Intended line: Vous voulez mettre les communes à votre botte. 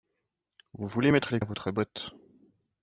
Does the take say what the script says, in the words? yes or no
no